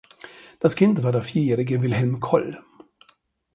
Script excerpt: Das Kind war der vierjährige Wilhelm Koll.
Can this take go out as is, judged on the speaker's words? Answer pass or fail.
pass